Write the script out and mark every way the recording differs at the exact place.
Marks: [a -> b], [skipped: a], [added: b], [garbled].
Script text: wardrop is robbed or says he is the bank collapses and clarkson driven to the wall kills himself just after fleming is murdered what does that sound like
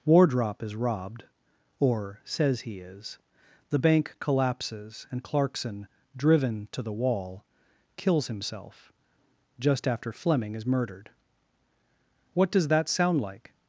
wardrop is robbed or says he is the bank collapses and clarkson driven to the wall kills himself just after fleming is murdered what does that sound like